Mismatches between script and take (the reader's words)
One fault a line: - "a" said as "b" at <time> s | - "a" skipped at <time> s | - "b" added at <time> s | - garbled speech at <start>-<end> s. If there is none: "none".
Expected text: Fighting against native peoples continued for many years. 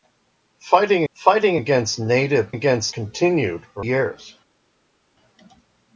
- "fighting" added at 1.1 s
- "peoples" said as "against" at 2.5 s
- "many" skipped at 3.8 s